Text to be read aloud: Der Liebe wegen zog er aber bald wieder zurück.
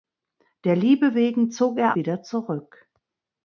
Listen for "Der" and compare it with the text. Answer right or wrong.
right